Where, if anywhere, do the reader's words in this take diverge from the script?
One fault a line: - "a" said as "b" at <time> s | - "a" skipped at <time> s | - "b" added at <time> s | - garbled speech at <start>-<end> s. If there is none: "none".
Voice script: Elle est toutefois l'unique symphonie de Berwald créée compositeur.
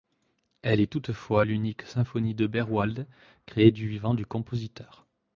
- "du vivant du" added at 3.7 s